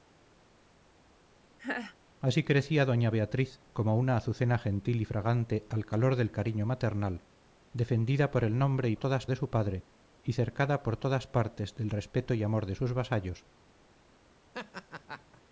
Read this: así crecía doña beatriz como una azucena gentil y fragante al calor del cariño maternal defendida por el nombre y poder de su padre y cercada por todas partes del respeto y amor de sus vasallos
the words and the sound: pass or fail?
fail